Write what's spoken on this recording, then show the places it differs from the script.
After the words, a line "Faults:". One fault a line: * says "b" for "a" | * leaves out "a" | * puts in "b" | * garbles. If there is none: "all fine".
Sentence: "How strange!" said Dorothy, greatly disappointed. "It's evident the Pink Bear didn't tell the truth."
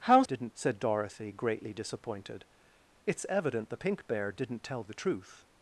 "How didn't!" said Dorothy, greatly disappointed. "It's evident the Pink Bear didn't tell the truth."
Faults:
* says "didn't" for "strange"